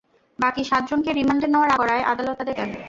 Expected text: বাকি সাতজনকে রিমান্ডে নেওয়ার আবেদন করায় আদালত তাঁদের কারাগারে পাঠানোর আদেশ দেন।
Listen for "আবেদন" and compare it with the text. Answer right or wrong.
wrong